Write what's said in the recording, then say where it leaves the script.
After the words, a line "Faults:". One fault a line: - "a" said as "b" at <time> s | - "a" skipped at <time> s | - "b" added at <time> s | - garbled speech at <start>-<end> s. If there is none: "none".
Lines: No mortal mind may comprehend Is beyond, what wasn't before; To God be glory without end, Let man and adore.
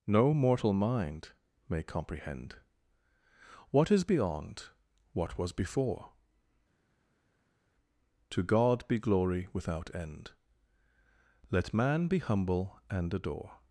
No mortal mind may comprehend What is beyond, what was before; To God be glory without end, Let man be humble and adore.
Faults:
- "What" added at 3.7 s
- "wasn't" said as "was" at 5.4 s
- "be humble" added at 12.1 s